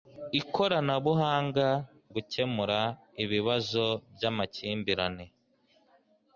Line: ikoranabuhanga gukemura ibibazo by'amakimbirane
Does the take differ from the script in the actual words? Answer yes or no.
no